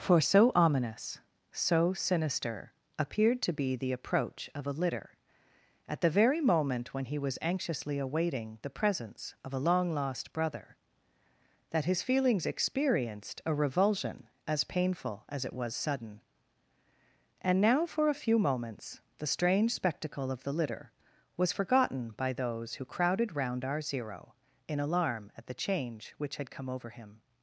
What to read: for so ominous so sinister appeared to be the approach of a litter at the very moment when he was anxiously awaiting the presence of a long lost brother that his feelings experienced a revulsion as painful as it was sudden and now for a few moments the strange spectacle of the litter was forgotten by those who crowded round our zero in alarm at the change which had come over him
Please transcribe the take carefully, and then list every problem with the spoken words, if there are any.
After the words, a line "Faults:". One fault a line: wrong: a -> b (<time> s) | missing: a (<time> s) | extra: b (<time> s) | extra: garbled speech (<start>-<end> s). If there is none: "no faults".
for so ominous so sinister appeared to be the approach of a litter at the very moment when he was anxiously awaiting the presence of a long lost brother that his feelings experienced a revulsion as painful as it was sudden and now for a few moments the strange spectacle of the litter was forgotten by those who crowded round our zero in alarm at the change which had come over him
Faults:
no faults